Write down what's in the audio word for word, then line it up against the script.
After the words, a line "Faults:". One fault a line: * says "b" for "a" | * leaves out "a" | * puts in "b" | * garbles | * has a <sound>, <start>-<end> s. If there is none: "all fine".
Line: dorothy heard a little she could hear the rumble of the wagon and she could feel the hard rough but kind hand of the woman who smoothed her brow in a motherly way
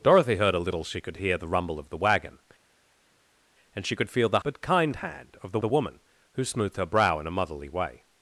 dorothy heard a little she could hear the rumble of the wagon and she could feel the but kind hand of the the woman who smoothed her brow in a motherly way
Faults:
* leaves out "hard rough"
* puts in "the"